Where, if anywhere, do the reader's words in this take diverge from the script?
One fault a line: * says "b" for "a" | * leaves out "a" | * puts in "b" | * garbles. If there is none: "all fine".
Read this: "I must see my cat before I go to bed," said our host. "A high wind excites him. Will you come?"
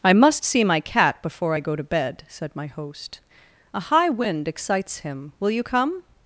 * says "my" for "our"